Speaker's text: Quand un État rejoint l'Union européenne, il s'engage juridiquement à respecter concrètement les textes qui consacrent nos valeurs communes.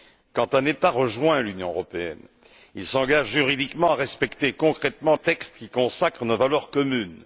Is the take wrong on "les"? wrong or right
wrong